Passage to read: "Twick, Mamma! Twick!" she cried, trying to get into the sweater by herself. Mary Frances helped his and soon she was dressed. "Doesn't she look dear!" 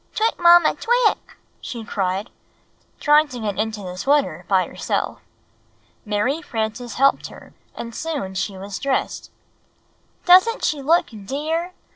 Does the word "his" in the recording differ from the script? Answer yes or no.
yes